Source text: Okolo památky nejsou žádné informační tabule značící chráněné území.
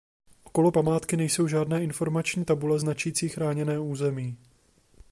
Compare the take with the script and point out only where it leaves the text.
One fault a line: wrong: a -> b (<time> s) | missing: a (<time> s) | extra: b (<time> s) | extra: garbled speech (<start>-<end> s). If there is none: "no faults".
no faults